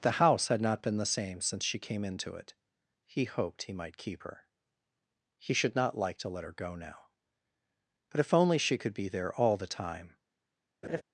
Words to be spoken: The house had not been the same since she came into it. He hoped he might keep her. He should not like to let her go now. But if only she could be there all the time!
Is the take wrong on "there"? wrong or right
right